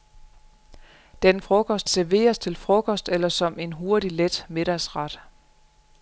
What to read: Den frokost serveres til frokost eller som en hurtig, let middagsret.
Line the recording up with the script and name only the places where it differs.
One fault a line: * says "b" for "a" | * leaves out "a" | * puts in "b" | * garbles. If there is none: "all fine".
all fine